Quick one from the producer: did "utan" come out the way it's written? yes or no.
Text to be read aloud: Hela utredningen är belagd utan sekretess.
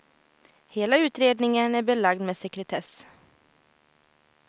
no